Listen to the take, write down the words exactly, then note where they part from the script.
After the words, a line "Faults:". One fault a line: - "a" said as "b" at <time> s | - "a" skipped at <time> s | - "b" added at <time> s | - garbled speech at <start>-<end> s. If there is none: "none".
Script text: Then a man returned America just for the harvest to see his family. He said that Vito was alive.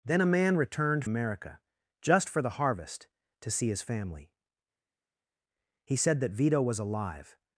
Then a man returned America just for the harvest to see his family. He said that Vito was alive.
Faults:
none